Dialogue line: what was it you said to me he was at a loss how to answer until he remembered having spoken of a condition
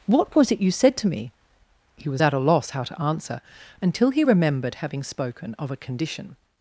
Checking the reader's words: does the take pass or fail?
pass